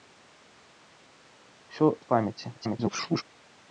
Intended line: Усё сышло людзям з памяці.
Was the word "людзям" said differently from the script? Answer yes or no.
yes